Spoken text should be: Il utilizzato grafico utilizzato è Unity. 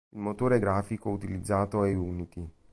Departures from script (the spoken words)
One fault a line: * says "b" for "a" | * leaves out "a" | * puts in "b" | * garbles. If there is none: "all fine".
* says "motore" for "utilizzato"